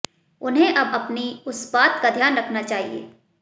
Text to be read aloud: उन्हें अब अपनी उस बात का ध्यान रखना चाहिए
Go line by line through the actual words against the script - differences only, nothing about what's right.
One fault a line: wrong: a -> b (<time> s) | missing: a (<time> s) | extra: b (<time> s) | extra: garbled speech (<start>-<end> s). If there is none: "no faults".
no faults